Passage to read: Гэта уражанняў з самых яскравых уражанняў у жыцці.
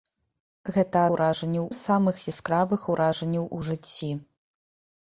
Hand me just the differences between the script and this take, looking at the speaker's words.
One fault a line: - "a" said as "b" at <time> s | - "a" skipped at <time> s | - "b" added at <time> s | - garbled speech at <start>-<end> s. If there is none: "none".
none